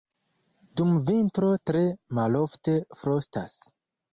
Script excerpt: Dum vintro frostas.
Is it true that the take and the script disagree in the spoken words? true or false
true